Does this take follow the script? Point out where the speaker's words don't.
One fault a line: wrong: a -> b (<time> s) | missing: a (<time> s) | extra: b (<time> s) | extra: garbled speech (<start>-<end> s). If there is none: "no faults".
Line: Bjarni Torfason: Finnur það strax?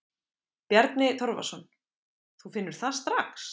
extra: Þú (2.4 s)